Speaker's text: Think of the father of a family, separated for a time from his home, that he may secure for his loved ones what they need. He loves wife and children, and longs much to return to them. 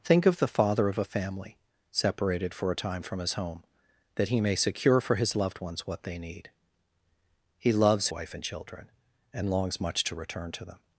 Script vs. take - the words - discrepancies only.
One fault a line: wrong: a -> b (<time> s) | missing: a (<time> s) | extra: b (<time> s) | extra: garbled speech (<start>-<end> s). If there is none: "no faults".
no faults